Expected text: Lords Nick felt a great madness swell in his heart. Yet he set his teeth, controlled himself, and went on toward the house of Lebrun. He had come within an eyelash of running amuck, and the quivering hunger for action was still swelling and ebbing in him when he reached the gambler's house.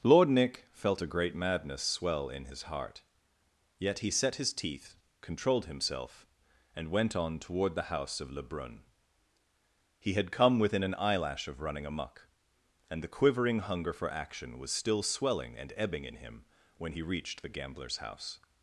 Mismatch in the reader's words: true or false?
true